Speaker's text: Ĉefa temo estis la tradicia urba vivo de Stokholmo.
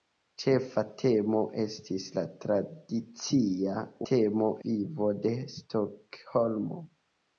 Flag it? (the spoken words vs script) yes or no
yes